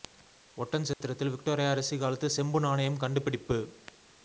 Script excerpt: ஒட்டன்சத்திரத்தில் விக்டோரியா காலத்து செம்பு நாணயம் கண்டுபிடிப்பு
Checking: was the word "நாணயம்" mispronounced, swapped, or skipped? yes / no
no